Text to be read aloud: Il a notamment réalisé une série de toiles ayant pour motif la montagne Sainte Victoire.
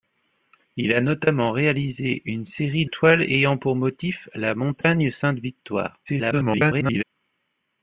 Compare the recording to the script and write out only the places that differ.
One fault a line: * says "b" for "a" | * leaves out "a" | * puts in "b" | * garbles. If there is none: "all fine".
* leaves out "de"
* garbles